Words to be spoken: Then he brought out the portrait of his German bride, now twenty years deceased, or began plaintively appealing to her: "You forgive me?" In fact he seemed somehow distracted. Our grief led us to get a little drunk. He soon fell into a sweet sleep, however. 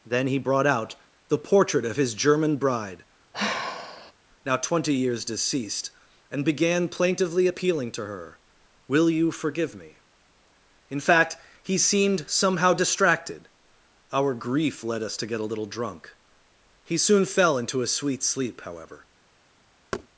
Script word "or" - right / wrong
wrong